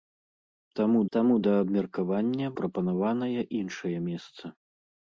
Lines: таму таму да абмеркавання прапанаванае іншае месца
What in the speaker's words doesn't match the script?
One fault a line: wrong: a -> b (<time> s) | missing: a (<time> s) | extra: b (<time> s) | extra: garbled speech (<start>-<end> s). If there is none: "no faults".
no faults